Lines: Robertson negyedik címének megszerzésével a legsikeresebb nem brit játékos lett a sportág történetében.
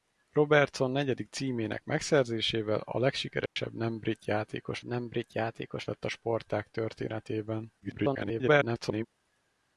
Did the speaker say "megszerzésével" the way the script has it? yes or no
yes